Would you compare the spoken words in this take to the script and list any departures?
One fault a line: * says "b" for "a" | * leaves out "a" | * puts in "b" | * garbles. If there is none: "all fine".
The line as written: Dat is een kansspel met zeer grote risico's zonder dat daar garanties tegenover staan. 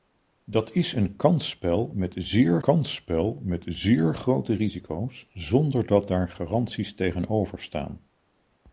* puts in "kansspel met zeer"